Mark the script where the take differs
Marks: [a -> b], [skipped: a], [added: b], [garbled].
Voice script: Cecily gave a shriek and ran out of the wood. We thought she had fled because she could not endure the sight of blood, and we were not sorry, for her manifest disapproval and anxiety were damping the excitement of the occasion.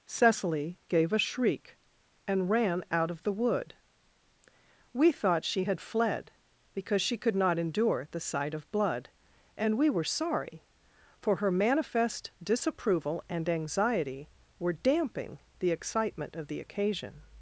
Cecily gave a shriek and ran out of the wood. We thought she had fled because she could not endure the sight of blood, and we were [skipped: not] sorry, for her manifest disapproval and anxiety were damping the excitement of the occasion.